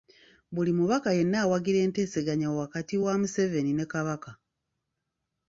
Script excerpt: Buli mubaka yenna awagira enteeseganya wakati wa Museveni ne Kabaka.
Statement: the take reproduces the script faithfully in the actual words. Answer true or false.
true